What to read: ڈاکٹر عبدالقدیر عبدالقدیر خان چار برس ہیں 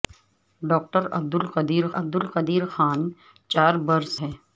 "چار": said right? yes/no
yes